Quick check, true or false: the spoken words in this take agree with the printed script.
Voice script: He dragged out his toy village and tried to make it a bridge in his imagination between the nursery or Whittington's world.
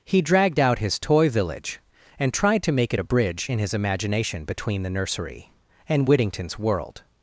false